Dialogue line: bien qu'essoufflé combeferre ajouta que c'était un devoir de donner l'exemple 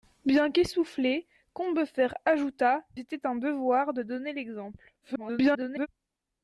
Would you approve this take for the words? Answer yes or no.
no